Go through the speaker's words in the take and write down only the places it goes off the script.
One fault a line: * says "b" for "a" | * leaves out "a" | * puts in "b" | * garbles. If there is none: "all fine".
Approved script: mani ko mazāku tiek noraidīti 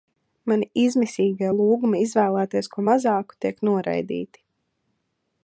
* puts in "izmisīgie lūgumi izvēlēties"